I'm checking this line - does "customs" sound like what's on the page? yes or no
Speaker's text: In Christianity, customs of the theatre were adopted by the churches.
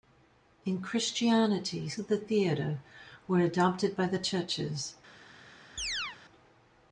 no